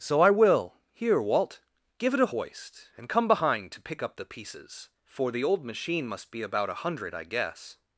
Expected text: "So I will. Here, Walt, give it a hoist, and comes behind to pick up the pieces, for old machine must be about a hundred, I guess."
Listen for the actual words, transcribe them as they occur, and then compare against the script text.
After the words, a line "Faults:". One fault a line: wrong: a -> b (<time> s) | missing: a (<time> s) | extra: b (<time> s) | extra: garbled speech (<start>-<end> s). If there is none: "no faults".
"So I will. Here, Walt, give it a hoist, and come behind to pick up the pieces, for the old machine must be about a hundred, I guess."
Faults:
wrong: comes -> come (3.1 s)
extra: the (5.3 s)